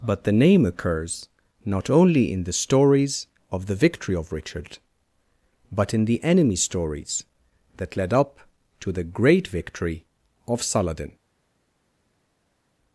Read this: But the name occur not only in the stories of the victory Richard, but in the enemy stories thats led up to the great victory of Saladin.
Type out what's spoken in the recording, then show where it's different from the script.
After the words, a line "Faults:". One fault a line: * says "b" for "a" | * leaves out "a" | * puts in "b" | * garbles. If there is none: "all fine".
But the name occurs not only in the stories of the victory of Richard, but in the enemy stories that led up to the great victory of Saladin.
Faults:
* says "occurs" for "occur"
* puts in "of"
* says "that" for "thats"